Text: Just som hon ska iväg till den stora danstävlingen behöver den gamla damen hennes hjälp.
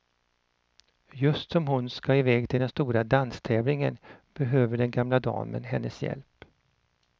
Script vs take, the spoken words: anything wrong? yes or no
no